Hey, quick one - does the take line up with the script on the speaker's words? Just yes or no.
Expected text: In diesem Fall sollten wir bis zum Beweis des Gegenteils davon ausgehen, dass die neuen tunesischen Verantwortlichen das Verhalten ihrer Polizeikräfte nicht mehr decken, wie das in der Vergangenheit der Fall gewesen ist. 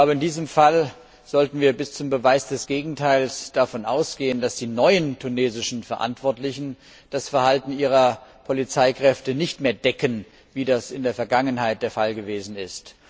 yes